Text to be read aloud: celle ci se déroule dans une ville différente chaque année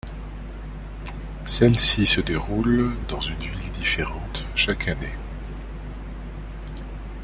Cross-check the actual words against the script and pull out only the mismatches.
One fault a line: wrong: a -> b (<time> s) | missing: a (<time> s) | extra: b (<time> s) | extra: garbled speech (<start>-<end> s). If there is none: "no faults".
no faults